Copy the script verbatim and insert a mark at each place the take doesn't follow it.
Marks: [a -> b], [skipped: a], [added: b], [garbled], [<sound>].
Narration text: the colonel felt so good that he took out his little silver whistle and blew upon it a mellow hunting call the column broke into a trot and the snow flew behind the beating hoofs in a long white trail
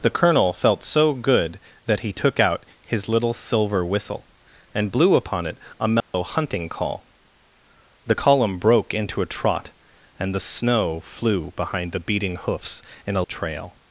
the colonel felt so good that he took out his little silver whistle and blew upon it a mellow [dropout] hunting call the column broke into a trot and the snow flew behind the beating hoofs in a [skipped: long white] trail